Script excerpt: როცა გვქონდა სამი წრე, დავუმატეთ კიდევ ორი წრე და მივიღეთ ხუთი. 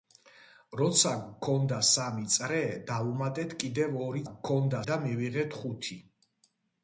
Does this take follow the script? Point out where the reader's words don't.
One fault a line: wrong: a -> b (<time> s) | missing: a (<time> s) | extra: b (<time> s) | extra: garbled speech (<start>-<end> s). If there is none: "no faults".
wrong: წრე -> გვქონდა (4.3 s)